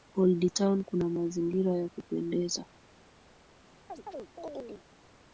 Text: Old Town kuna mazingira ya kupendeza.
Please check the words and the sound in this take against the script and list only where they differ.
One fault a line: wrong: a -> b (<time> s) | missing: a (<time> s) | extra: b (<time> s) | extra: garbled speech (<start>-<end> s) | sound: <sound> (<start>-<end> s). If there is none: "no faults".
sound: chirp (3.9-4.9 s)